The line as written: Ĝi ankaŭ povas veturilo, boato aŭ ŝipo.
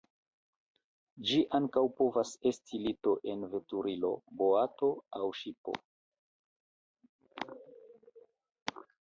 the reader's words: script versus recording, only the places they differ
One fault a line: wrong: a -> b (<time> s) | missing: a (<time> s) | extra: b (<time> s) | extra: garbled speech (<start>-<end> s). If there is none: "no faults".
extra: esti lito en (2.5 s)